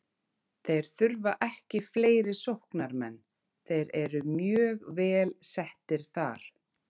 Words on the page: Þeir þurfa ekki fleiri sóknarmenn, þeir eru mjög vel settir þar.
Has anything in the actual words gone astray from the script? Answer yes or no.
no